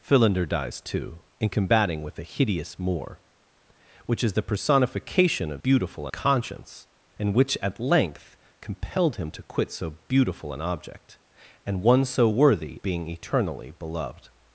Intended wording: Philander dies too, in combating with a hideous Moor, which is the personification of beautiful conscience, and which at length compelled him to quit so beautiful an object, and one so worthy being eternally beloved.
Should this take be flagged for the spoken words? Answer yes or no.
no